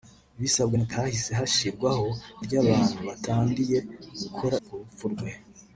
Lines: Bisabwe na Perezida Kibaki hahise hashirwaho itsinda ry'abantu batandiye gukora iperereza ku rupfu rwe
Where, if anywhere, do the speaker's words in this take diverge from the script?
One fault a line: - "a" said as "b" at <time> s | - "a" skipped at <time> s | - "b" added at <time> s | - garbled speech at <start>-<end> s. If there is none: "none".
- "Perezida Kibaki" skipped at 0.9 s
- "itsinda" skipped at 2.1 s
- "iperereza" skipped at 4.6 s